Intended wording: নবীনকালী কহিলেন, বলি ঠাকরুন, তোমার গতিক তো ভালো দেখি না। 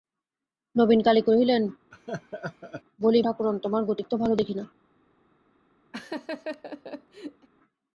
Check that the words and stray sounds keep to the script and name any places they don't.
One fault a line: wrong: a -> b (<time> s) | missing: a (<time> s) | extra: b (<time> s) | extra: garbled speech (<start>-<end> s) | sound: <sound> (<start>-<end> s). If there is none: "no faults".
sound: laugh (1.9-2.8 s)
sound: laugh (5.9-7.5 s)